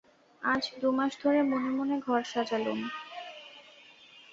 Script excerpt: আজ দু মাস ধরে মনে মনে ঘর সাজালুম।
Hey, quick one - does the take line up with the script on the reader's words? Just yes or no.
yes